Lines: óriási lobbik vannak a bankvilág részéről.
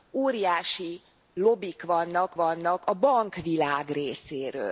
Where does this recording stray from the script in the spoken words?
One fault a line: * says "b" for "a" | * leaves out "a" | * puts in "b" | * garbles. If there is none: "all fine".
* puts in "vannak"